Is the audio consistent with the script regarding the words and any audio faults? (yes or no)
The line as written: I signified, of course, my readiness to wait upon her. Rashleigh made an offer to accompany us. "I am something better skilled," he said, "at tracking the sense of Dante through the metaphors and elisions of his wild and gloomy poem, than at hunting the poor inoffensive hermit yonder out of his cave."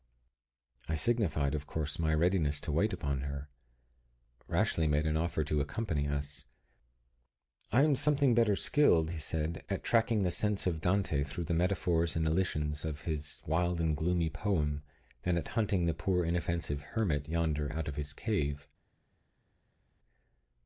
yes